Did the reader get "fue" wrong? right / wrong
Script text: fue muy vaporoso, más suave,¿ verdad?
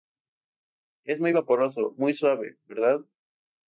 wrong